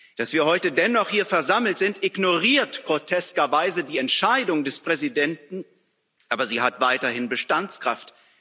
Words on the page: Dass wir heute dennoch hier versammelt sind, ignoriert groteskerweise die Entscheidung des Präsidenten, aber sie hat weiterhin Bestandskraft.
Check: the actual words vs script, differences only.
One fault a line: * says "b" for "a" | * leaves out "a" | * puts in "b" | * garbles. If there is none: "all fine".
all fine